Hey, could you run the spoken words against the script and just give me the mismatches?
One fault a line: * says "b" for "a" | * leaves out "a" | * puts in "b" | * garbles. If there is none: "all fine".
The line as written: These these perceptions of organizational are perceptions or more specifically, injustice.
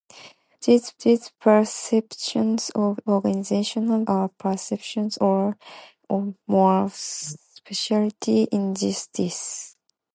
all fine